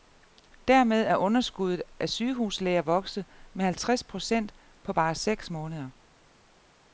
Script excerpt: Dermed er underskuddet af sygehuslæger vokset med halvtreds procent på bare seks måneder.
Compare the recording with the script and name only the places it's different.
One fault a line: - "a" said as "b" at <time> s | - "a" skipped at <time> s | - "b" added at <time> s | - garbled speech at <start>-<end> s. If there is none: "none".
none